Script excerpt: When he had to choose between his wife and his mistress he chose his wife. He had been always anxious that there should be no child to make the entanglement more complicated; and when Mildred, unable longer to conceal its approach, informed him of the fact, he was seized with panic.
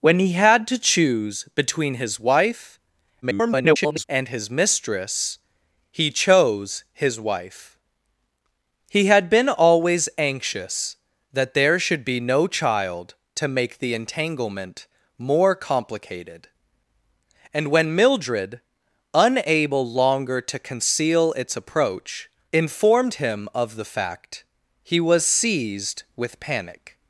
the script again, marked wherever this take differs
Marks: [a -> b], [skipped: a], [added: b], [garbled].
When he had to choose between his wife [garbled] and his mistress he chose his wife. He had been always anxious that there should be no child to make the entanglement more complicated; and when Mildred, unable longer to conceal its approach, informed him of the fact, he was seized with panic.